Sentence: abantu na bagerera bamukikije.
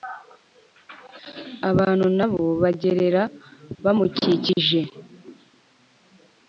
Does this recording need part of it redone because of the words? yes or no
yes